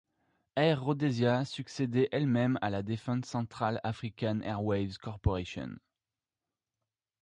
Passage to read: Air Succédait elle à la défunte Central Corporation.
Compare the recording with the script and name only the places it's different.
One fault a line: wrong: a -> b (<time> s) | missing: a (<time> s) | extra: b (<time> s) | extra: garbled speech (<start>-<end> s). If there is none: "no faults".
extra: Rhodesia (0.8 s)
extra: même (2.2 s)
extra: African Airways (3.8 s)